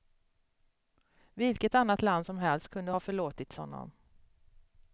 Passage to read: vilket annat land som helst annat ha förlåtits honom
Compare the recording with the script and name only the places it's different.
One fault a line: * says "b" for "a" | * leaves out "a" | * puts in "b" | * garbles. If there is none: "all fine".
* says "kunde" for "annat"